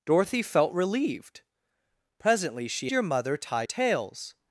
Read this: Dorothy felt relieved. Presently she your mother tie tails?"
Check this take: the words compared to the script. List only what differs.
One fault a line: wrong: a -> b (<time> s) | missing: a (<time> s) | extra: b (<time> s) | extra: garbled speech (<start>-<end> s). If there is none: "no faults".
no faults